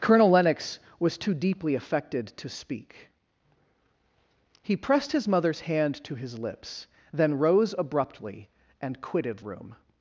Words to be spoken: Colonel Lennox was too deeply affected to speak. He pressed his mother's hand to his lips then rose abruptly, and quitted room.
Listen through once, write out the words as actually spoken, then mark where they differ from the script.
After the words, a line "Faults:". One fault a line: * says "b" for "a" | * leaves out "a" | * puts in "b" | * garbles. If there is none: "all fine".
Colonel Lennox was too deeply affected to speak. He pressed his mother's hand to his lips then rose abruptly, and quitted room.
Faults:
all fine